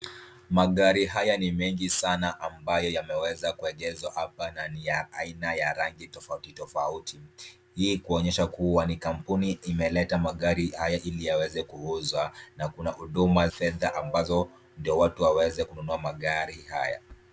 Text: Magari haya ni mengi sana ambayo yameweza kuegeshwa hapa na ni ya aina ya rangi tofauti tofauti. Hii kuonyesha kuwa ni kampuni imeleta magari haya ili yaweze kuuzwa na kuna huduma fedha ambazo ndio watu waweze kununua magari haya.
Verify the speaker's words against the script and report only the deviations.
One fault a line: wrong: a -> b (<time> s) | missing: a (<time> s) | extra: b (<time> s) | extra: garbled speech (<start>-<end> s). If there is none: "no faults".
no faults